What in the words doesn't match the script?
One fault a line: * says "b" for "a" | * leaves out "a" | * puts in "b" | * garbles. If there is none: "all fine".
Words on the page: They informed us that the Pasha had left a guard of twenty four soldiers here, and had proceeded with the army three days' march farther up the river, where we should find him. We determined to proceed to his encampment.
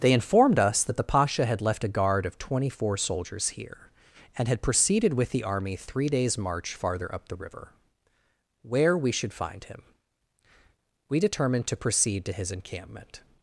all fine